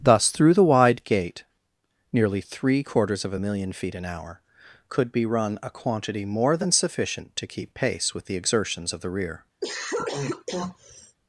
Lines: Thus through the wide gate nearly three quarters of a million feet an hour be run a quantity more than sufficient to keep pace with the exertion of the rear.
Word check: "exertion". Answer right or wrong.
wrong